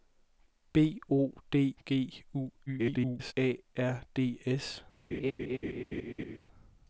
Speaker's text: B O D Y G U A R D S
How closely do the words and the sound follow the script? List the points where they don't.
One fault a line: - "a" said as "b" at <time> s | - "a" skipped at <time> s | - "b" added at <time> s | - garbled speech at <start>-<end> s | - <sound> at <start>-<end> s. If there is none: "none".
- "Y" skipped at 1.8 s
- garbled speech at 2.7-3.3 s
- laugh at 5.1-6.4 s